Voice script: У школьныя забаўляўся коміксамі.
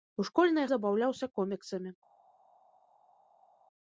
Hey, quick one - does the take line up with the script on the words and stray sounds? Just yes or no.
yes